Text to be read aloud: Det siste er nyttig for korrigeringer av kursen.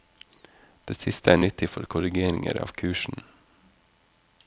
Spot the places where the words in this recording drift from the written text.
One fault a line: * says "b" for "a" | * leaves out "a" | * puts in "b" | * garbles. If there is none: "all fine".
all fine